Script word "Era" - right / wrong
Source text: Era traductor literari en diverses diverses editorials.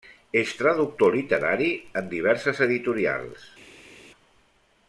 wrong